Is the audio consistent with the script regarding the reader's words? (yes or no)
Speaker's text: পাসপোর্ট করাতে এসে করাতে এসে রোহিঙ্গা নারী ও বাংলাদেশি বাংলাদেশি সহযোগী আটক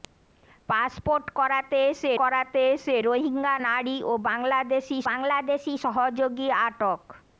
yes